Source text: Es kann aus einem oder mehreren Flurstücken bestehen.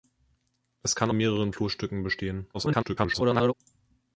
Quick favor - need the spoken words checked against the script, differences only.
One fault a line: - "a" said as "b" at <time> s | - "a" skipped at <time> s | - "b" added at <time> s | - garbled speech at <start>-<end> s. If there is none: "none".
- "aus einem oder" skipped at 1.1 s
- garbled speech at 2.5-3.5 s